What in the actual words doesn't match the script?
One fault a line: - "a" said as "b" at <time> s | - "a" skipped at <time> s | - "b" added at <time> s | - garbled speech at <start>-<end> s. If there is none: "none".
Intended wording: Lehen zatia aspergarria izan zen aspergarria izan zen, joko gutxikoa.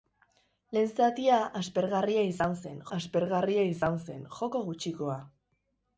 none